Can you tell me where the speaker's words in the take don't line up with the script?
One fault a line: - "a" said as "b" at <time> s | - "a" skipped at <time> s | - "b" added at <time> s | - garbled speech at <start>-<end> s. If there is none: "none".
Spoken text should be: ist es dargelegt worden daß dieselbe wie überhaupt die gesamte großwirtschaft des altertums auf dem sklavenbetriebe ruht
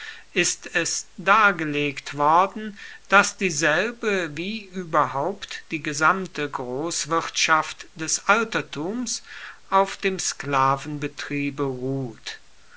none